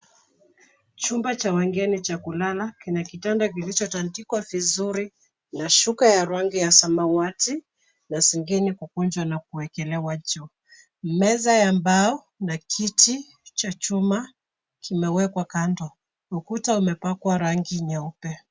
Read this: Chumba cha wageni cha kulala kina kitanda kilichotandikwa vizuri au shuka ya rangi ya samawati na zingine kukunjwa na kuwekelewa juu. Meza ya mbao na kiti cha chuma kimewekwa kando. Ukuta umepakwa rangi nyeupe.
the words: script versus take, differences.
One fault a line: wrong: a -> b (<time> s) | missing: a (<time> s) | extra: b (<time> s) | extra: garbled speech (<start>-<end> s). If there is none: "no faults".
wrong: au -> na (5.5 s)